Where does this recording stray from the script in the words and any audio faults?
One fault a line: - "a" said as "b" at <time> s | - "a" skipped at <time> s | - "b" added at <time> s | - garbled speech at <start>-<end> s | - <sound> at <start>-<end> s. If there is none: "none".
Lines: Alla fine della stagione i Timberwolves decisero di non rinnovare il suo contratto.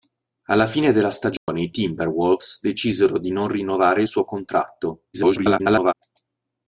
- dropout at 1.4-1.5 s
- garbled speech at 5.1-5.9 s